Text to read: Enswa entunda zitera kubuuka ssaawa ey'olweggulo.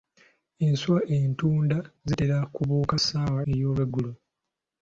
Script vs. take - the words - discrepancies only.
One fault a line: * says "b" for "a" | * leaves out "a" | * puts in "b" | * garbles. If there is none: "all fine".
all fine